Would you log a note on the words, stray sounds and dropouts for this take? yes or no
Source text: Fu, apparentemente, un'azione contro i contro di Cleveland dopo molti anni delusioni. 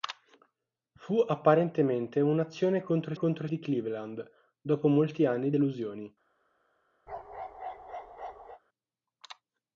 yes